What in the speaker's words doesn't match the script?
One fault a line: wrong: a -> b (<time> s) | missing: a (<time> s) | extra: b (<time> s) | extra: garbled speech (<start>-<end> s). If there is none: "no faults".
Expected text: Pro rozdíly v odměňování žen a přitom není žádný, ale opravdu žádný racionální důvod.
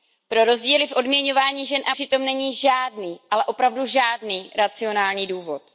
no faults